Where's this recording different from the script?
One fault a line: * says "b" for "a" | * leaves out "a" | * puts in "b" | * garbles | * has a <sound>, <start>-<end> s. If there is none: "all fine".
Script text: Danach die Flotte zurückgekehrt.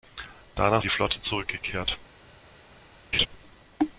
* has a laugh, 3.1-3.3 s